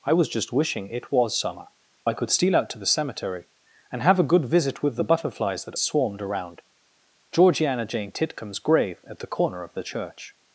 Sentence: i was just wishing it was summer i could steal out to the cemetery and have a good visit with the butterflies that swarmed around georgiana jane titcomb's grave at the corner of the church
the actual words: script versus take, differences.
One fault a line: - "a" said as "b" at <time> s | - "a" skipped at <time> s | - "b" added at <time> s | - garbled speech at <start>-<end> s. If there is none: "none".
none